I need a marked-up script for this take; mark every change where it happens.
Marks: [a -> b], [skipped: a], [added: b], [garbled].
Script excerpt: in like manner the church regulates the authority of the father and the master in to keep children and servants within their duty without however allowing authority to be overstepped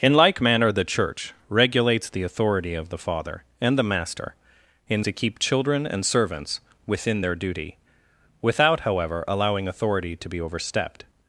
in like manner the church regulates the authority of the father and the master in to keep children and servants within their duty without however allowing authority to be overstepped